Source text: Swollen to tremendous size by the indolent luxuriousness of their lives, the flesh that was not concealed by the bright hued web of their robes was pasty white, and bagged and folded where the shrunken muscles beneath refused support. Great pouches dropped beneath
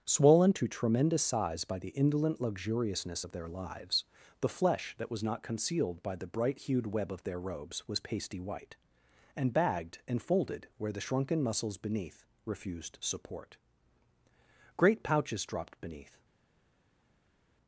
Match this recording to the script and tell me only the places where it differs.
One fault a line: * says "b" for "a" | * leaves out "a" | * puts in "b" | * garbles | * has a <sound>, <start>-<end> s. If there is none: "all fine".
all fine